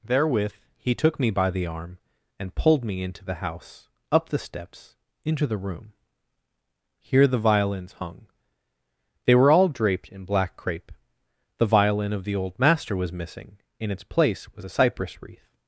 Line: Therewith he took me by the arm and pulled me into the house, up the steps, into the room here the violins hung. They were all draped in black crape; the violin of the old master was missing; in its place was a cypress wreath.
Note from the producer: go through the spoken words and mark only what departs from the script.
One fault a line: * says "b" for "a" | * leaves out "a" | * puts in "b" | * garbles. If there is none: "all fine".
all fine